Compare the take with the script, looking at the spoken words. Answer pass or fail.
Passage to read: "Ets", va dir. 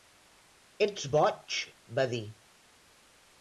fail